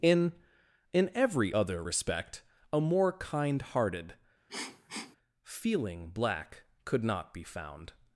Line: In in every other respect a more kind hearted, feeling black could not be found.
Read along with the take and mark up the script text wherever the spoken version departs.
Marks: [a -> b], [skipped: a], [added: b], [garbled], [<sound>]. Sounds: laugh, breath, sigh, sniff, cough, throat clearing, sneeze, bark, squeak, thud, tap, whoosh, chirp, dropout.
In in every other respect a more kind hearted, [sniff] feeling black could not be found.